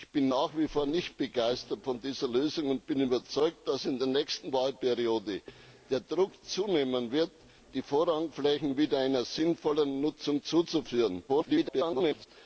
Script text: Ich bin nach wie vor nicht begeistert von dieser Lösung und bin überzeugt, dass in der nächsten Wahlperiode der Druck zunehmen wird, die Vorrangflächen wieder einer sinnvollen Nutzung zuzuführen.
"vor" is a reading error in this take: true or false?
false